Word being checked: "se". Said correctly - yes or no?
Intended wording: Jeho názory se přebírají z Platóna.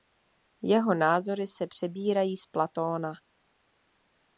yes